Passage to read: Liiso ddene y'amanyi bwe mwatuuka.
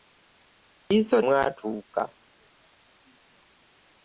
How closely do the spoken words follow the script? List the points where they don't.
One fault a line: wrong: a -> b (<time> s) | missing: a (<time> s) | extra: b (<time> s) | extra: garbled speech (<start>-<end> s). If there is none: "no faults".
missing: ddene y'amanyi bwe (1.2 s)